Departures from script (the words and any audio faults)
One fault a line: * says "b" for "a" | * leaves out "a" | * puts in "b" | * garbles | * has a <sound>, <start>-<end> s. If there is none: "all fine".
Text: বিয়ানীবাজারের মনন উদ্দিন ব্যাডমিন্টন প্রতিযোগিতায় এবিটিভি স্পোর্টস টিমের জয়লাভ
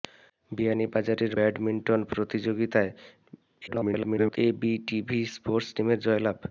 * leaves out "মনন উদ্দিন"
* garbles